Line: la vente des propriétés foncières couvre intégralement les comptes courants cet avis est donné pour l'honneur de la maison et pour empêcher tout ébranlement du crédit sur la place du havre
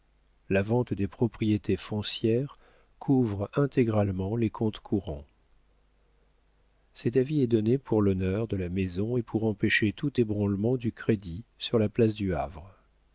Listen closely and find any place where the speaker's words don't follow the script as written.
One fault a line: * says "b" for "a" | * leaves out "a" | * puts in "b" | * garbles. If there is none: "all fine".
all fine